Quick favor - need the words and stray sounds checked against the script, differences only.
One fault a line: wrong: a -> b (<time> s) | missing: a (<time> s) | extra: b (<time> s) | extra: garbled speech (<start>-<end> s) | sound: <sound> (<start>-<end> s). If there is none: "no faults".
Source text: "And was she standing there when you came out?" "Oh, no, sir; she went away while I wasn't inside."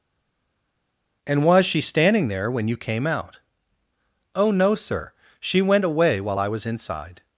wrong: wasn't -> was (6.5 s)